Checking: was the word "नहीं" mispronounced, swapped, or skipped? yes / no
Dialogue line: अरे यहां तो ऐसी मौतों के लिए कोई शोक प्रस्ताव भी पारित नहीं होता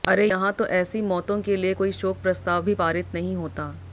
no